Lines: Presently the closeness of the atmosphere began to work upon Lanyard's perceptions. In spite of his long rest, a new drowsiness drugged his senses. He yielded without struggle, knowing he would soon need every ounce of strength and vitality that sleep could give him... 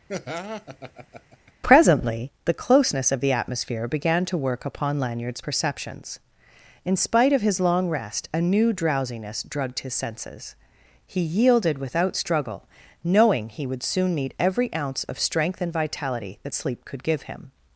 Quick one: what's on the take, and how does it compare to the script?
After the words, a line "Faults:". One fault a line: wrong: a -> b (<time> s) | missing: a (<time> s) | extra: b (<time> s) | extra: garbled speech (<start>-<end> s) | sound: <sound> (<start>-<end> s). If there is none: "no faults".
Presently the closeness of the atmosphere began to work upon Lanyard's perceptions. In spite of his long rest, a new drowsiness drugged his senses. He yielded without struggle, knowing he would soon need every ounce of strength and vitality that sleep could give him...
Faults:
sound: laugh (0.1-1.5 s)